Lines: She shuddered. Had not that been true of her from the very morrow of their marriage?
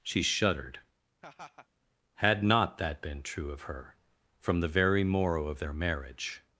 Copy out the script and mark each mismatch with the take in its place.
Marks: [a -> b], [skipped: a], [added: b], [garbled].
She shuddered. Had not that been true of her from the very morrow of their marriage?